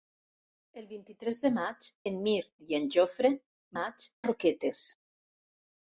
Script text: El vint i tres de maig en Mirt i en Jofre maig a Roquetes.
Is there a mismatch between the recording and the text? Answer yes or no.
no